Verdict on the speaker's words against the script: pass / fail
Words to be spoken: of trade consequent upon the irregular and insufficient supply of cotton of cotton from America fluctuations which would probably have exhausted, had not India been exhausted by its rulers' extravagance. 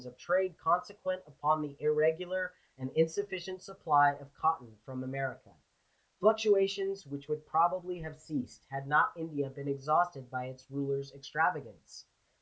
fail